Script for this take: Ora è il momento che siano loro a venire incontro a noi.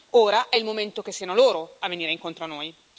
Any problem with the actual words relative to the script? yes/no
no